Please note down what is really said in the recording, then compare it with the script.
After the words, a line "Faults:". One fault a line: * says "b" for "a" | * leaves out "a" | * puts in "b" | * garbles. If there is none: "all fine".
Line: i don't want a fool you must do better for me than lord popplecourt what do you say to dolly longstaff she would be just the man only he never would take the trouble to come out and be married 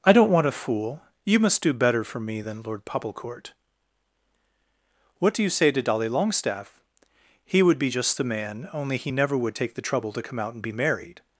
i don't want a fool you must do better for me than lord popplecourt what do you say to dolly longstaff he would be just the man only he never would take the trouble to come out and be married
Faults:
* says "he" for "she"